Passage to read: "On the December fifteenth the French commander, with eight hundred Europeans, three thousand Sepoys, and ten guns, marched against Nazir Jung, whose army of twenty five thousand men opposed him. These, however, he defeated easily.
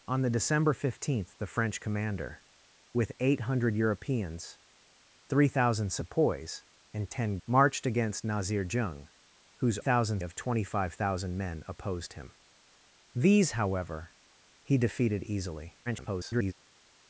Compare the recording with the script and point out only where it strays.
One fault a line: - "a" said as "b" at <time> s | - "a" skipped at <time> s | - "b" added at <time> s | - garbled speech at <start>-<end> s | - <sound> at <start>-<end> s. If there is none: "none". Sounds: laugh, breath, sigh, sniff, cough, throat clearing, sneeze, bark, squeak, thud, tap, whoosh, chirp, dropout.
- "guns" skipped at 7.4 s
- "army" said as "thousand" at 9.8 s
- garbled speech at 15.9-16.5 s